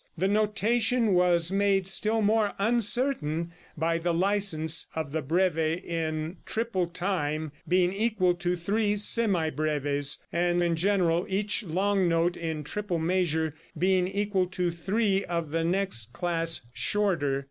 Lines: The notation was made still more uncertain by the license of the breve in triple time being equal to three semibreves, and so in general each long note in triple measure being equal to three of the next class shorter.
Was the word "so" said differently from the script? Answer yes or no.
yes